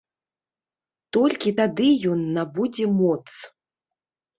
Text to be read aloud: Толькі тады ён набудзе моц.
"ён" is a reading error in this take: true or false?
false